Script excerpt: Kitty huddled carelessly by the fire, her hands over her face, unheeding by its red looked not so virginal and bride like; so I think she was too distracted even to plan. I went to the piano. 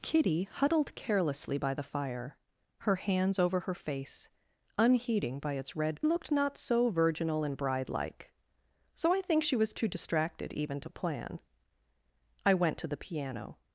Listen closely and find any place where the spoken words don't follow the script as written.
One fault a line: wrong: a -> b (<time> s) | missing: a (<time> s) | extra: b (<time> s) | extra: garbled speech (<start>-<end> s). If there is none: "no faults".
no faults